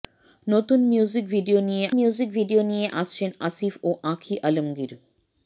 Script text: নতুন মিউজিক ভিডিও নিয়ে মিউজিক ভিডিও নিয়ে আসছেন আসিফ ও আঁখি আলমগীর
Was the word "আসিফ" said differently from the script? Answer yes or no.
no